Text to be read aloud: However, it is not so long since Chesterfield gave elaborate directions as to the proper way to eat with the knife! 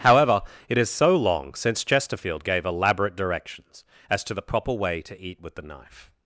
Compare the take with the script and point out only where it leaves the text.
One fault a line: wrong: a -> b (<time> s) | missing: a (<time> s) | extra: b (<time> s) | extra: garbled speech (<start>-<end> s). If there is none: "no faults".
missing: not (0.9 s)